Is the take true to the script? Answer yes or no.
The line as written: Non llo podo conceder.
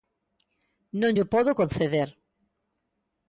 yes